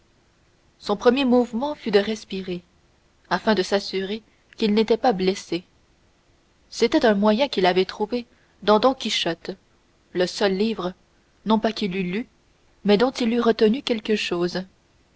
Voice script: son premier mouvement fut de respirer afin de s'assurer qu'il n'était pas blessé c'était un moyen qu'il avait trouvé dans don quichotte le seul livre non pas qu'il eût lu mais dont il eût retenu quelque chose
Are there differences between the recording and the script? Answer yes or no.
no